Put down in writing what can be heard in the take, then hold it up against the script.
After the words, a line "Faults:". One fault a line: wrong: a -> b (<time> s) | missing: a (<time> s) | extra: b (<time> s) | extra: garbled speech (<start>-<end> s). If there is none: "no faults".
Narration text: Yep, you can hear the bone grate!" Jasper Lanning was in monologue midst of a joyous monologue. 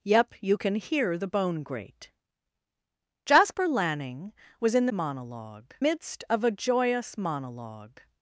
Yep, you can hear the bone grate!" Jasper Lanning was in monologue midst of a joyous monologue.
Faults:
no faults